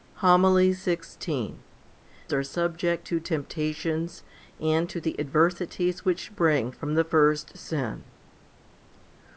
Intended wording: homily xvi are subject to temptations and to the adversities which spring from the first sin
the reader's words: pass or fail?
pass